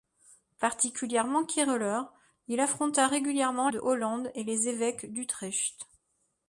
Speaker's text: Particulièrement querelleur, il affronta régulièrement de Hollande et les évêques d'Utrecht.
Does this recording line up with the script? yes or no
yes